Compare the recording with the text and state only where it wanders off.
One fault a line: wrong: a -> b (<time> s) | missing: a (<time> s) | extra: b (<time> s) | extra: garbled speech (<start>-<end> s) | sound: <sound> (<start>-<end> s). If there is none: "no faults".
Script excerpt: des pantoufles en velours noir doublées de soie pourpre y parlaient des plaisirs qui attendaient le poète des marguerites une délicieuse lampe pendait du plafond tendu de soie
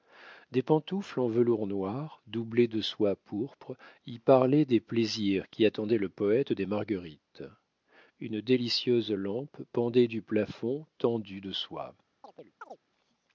sound: chirp (12.2-12.8 s)